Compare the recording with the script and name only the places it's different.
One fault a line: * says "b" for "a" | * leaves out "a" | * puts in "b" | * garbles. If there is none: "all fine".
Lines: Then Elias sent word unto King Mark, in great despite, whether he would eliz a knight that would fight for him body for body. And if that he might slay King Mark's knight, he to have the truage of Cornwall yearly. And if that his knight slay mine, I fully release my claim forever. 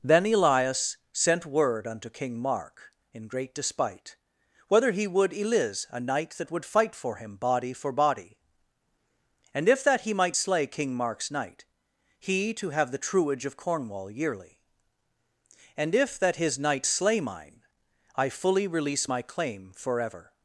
all fine